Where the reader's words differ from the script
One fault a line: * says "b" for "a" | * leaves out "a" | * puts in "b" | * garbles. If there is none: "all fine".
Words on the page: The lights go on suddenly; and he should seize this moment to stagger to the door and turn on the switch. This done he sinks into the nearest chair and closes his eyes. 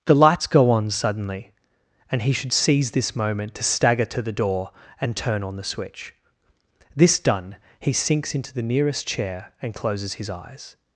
all fine